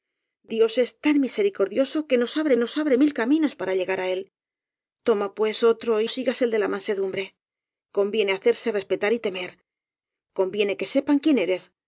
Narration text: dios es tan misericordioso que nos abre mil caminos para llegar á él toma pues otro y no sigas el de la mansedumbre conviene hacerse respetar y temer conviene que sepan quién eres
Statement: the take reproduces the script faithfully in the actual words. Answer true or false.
false